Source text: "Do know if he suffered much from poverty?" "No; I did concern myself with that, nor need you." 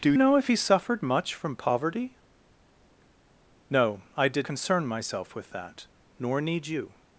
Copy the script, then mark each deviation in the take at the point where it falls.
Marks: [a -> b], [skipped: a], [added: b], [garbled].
"Do know if he suffered much from poverty?" "No; I did concern myself with that, nor need you."